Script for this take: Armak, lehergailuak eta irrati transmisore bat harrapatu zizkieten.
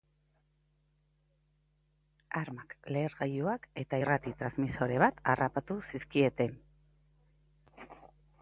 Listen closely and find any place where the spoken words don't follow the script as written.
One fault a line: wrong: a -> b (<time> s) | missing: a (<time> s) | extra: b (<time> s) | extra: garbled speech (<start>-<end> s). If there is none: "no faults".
no faults